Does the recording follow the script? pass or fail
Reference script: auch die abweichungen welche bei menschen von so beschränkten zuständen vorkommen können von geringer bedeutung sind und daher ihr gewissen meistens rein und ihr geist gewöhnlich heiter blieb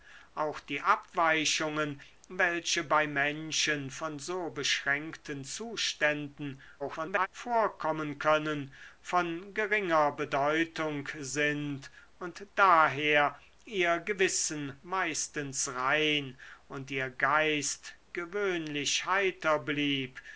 fail